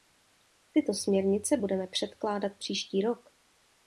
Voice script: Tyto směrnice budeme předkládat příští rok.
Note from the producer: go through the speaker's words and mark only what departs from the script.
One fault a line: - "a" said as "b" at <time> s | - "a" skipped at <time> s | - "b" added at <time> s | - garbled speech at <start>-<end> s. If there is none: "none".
none